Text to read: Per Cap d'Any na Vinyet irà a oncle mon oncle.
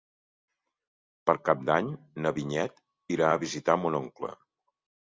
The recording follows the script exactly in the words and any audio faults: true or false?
false